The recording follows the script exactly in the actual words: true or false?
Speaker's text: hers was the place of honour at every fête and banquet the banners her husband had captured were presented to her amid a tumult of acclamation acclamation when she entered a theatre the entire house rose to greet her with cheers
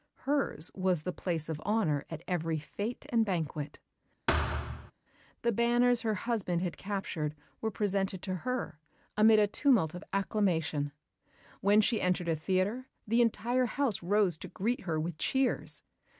false